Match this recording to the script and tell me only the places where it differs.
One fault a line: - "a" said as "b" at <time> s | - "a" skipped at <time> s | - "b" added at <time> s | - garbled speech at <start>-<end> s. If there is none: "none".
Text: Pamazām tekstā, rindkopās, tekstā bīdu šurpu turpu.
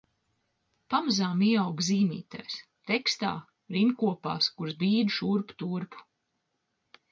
- "ieaugu zīmītēs" added at 1.5 s
- "tekstā" said as "kuras" at 4.6 s